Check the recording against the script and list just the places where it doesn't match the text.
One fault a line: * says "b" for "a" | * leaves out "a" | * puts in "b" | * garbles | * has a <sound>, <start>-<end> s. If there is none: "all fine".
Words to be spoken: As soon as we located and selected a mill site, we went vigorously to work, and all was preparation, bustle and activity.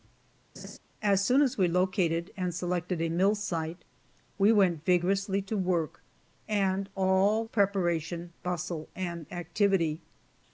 * has a laugh, 0.5-0.8 s
* leaves out "was"